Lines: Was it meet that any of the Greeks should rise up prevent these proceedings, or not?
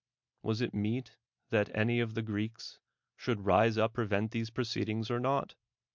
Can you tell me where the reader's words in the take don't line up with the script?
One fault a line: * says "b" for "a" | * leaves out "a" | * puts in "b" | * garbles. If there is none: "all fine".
all fine